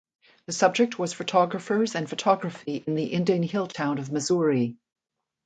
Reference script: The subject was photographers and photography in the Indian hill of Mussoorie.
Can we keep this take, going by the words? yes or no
no